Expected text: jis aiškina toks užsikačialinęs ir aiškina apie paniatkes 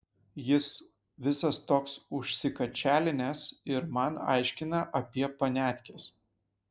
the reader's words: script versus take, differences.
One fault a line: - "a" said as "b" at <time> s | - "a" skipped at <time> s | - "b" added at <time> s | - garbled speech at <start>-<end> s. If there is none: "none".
- "aiškina" said as "visas" at 1.3 s
- "man" added at 4.0 s